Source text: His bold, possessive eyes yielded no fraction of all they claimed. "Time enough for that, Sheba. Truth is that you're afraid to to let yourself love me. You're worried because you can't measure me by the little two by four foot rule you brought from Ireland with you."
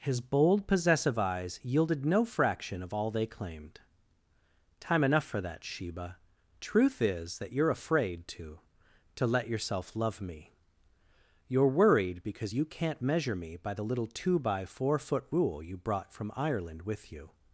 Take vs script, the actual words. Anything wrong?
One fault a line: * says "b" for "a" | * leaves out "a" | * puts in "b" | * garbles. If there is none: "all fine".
all fine